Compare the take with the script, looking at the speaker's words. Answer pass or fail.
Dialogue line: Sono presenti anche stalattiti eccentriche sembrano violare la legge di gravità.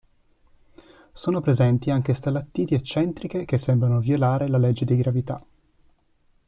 fail